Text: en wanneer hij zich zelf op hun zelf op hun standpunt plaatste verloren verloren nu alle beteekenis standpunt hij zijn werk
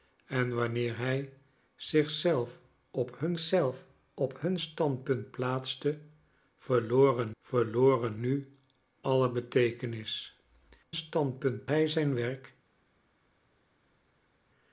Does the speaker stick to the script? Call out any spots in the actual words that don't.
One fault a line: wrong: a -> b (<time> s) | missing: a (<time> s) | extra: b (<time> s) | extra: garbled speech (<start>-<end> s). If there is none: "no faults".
no faults